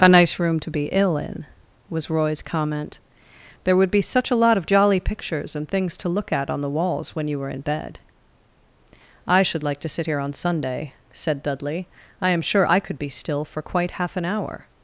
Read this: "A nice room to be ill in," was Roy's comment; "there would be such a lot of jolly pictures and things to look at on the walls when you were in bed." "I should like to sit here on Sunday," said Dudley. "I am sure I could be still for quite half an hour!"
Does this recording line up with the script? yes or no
yes